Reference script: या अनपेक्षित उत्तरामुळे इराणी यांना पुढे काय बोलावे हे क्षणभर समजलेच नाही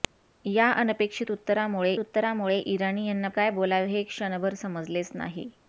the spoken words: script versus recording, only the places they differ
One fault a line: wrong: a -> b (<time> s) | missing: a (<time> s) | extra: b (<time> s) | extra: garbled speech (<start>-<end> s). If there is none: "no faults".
extra: उत्तरामुळे (2.0 s)
missing: पुढे (3.3 s)